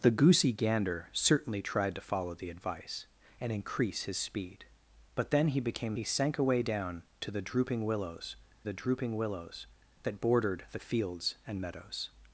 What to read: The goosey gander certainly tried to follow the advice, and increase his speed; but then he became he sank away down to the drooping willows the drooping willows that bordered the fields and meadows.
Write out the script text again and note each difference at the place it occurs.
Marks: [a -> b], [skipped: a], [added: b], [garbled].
The goosey gander certainly tried to follow the advice, and increase his speed; but then he became he sank away down to the drooping willows the drooping willows that bordered the fields and meadows.